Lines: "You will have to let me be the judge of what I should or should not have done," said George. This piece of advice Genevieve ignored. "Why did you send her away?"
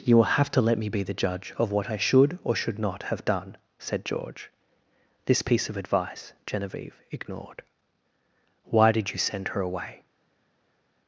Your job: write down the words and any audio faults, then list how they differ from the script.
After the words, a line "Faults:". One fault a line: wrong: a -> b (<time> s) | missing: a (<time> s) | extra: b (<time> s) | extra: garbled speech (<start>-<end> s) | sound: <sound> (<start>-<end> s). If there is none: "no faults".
"You will have to let me be the judge of what I should or should not have done," said George. This piece of advice Genevieve ignored. "Why did you send her away?"
Faults:
no faults